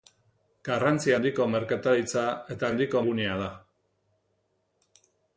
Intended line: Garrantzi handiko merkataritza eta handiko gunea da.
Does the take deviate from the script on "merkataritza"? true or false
false